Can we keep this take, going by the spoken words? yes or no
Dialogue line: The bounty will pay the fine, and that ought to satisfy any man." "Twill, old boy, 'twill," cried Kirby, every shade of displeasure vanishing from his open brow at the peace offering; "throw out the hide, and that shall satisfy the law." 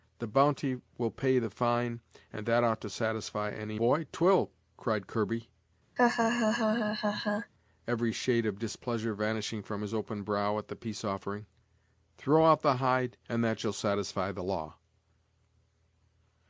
no